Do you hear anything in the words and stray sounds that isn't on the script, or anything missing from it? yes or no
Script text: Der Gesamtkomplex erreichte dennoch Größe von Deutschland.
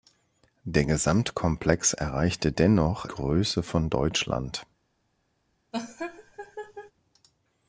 yes